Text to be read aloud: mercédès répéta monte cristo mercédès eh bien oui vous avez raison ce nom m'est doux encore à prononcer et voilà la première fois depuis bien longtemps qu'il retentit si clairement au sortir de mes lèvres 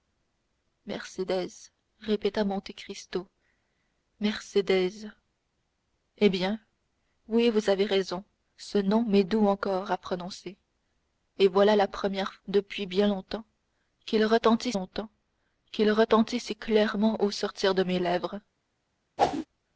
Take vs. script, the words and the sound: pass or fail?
fail